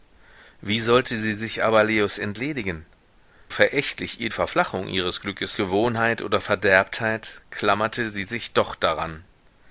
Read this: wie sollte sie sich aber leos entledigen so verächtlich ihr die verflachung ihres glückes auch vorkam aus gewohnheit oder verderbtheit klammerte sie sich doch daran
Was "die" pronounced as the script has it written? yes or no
no